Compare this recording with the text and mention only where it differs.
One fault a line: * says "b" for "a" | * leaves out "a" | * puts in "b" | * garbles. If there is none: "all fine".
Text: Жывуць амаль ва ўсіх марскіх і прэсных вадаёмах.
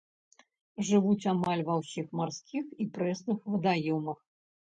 all fine